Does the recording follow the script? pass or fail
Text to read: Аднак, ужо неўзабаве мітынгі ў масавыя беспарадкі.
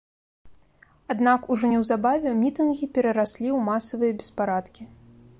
fail